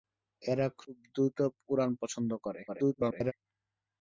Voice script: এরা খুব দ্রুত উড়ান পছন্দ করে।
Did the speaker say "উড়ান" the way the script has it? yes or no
yes